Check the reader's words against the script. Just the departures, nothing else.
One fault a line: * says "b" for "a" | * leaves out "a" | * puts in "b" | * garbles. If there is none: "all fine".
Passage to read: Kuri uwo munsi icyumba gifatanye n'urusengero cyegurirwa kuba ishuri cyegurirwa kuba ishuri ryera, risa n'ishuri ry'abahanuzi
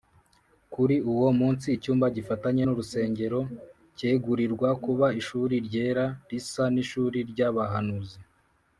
* leaves out "cyegurirwa kuba ishuri"